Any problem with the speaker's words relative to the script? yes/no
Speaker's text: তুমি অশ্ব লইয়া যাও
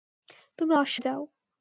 yes